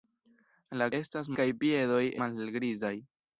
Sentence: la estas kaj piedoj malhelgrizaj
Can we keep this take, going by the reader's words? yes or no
yes